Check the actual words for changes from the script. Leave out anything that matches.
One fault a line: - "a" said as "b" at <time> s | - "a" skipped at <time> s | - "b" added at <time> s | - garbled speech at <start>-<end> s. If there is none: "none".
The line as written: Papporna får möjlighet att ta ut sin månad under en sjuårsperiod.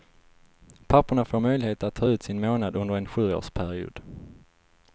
none